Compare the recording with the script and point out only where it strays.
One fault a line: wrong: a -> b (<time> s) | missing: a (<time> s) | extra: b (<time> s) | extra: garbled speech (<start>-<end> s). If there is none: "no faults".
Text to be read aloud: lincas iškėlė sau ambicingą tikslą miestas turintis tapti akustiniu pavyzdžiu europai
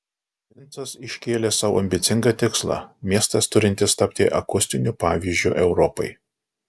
no faults